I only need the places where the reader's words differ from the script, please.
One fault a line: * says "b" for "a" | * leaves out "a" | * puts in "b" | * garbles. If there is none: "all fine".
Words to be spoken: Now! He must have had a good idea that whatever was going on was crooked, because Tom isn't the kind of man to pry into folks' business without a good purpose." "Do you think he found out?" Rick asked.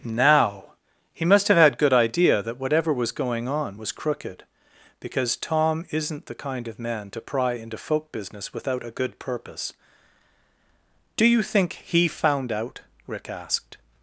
* leaves out "a"
* says "folk" for "folks"